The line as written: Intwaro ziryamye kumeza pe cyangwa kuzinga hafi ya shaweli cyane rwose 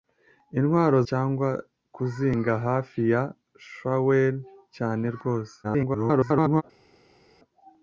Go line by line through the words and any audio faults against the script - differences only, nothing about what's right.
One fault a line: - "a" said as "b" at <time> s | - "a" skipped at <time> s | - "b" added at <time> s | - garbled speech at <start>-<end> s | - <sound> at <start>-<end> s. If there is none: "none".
- "ziryamye kumeza pe" skipped at 1.0 s
- garbled speech at 5.6-6.6 s